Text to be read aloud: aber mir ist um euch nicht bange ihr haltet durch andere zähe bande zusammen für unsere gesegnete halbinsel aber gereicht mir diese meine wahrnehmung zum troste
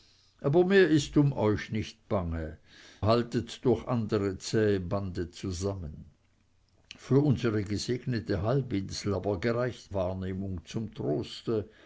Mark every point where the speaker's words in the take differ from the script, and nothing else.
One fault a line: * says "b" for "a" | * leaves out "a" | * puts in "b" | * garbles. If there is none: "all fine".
* leaves out "ihr"
* leaves out "mir diese meine"